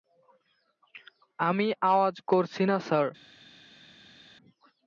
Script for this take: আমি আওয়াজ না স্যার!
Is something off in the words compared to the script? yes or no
yes